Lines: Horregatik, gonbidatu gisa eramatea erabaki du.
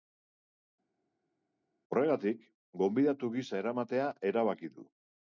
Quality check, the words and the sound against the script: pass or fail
pass